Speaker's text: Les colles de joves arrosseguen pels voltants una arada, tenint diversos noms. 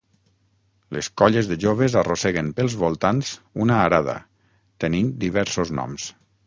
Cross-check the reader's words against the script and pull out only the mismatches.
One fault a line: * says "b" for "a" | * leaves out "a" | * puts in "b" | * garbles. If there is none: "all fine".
all fine